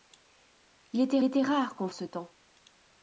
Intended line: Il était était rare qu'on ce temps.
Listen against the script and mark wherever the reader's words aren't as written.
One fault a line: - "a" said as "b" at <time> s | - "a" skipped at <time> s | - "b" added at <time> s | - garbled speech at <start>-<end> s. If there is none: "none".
none